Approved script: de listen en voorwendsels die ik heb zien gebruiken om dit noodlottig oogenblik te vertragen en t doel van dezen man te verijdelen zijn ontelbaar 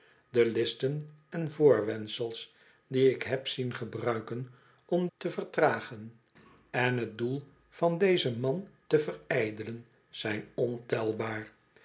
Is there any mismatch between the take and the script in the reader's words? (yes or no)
yes